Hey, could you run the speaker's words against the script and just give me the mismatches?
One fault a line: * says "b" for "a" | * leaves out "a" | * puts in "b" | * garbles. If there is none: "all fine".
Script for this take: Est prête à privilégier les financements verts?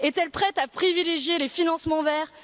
* puts in "elle"